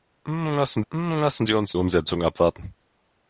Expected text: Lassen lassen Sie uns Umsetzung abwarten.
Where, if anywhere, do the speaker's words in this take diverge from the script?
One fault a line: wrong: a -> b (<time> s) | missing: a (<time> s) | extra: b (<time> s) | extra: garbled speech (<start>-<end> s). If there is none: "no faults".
no faults